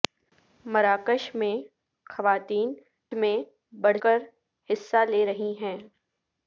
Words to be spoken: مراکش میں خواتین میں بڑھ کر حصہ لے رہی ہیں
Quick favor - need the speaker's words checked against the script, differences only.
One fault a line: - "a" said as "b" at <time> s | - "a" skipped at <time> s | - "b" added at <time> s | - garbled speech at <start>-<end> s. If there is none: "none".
none